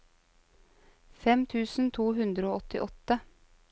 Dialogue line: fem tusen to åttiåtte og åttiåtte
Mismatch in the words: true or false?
true